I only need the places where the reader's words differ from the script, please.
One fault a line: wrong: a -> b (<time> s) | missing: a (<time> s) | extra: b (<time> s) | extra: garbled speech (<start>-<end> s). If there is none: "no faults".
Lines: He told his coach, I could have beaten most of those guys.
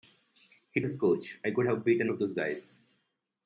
missing: told (0.8 s)
missing: most (2.1 s)